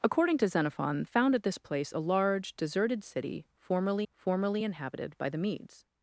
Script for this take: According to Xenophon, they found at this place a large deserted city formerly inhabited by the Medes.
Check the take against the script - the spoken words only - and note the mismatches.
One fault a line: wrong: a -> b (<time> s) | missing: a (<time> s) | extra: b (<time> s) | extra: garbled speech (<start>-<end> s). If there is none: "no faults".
missing: they (1.0 s)
extra: formerly (4.1 s)